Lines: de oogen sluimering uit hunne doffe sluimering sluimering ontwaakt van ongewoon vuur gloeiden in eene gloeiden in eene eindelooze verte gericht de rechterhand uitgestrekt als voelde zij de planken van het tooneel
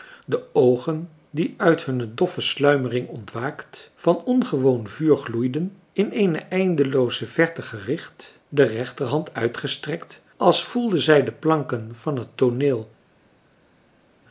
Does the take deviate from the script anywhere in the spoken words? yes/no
yes